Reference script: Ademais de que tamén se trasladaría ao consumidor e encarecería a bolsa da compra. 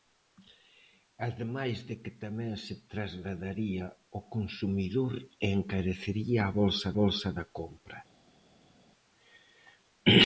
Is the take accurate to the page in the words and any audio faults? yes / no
no